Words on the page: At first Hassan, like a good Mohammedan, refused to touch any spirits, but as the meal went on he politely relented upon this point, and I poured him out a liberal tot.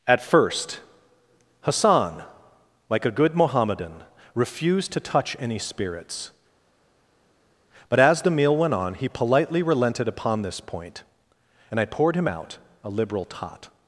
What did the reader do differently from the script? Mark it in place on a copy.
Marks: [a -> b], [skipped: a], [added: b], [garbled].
At first Hassan, like a good Mohammedan, refused to touch any spirits, but as the meal went on he politely relented upon this point, and I poured him out a liberal tot.